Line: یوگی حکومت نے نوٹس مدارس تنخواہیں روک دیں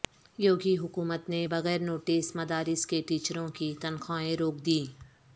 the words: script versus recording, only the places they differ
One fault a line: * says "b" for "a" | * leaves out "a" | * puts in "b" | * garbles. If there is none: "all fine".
* puts in "بغیر"
* puts in "کے ٹیچروں کی"